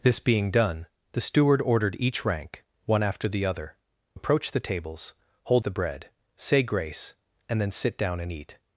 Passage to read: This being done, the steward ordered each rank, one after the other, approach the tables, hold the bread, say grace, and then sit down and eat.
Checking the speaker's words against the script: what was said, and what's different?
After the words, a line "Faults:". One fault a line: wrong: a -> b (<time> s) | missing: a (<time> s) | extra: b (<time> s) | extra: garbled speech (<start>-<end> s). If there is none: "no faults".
This being done, the steward ordered each rank, one after the other, approach the tables, hold the bread, say grace, and then sit down and eat.
Faults:
no faults